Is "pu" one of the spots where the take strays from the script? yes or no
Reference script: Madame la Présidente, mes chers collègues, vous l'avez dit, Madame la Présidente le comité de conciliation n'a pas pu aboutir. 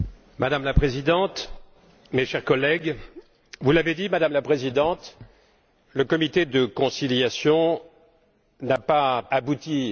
yes